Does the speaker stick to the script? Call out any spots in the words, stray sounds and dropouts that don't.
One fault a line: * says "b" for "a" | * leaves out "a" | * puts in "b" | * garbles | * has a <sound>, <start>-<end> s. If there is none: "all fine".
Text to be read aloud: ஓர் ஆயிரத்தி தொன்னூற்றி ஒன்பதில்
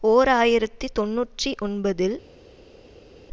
all fine